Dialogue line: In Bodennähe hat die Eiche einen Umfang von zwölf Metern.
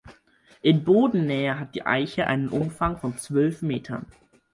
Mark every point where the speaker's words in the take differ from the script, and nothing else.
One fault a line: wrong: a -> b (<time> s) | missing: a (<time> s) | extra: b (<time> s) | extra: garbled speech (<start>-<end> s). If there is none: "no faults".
no faults